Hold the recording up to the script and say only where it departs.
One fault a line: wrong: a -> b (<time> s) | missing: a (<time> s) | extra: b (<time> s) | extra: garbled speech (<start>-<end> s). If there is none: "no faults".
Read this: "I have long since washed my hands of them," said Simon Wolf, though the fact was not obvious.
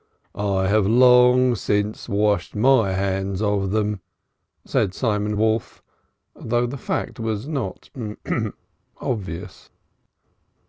no faults